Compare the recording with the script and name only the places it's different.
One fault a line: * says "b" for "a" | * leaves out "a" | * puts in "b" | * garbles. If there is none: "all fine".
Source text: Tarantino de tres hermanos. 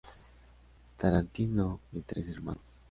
all fine